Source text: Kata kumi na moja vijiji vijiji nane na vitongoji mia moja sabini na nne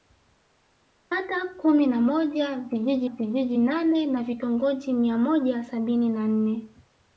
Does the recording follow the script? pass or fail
pass